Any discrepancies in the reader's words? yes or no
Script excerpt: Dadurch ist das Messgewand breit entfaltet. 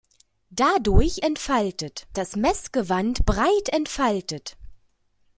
yes